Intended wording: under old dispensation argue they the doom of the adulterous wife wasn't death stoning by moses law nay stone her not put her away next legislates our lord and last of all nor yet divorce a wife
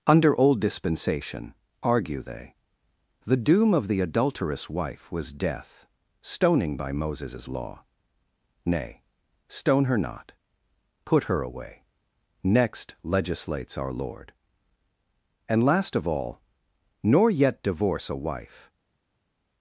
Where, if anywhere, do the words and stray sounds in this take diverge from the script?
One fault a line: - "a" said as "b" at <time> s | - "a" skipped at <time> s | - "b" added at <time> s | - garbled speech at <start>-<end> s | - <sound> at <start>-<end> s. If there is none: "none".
- "wasn't" said as "was" at 5.1 s